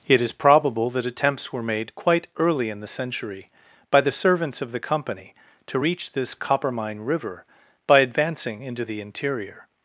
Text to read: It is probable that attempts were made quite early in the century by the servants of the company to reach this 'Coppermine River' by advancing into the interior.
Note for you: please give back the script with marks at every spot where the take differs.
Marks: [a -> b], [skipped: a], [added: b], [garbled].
It is probable that attempts were made quite early in the century by the servants of the company to reach this 'Coppermine River' by advancing into the interior.